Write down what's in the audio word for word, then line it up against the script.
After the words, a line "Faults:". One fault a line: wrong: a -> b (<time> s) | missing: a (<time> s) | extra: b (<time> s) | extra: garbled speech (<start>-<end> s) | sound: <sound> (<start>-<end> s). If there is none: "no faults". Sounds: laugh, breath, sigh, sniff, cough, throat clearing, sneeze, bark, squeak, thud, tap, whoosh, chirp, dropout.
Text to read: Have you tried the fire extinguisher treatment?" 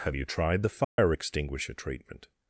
Have you tried the fire extinguisher treatment?"
Faults:
sound: dropout (0.8-1.0 s)